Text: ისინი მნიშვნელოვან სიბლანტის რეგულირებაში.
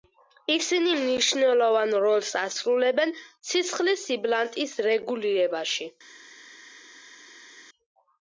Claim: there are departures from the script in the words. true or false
true